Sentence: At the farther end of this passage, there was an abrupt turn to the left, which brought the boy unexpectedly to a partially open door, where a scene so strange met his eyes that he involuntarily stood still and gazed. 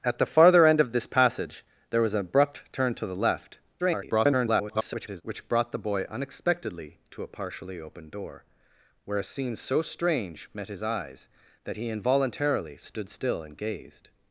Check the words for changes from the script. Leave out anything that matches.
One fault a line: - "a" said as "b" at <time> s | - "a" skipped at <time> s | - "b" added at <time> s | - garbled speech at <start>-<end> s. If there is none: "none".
- garbled speech at 3.8-5.2 s